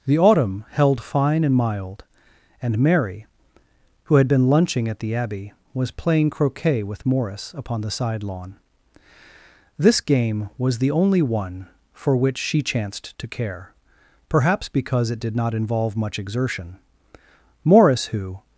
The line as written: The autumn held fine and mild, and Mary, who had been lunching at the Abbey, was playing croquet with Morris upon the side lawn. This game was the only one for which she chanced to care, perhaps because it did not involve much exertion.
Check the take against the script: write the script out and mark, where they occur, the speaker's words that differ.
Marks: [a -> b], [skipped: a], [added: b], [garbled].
The autumn held fine and mild, and Mary, who had been lunching at the Abbey, was playing croquet with Morris upon the side lawn. This game was the only one for which she chanced to care, perhaps because it did not involve much exertion. [added: Morris who]